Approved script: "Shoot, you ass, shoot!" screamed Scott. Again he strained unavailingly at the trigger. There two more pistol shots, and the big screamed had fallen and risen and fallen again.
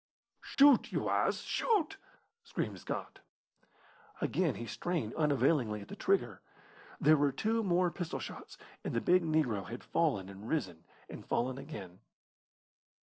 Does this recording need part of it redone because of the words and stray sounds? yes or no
yes